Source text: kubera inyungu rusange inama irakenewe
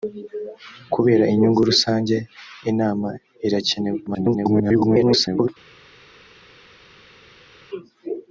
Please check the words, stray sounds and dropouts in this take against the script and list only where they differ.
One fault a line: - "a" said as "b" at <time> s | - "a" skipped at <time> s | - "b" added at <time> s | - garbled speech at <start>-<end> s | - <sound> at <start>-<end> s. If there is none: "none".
- garbled speech at 4.1-5.5 s